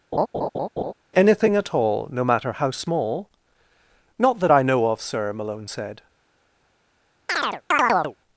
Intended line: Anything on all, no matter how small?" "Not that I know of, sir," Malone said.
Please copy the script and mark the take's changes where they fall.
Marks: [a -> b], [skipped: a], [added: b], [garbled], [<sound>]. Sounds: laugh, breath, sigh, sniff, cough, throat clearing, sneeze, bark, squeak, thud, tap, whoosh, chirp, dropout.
[laugh] Anything [on -> at] all, no matter how small?" "Not that I know of, sir," Malone said. [chirp]